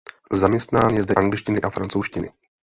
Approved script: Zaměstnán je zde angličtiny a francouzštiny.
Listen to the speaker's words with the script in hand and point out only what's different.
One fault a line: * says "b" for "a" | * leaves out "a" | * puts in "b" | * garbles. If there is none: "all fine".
all fine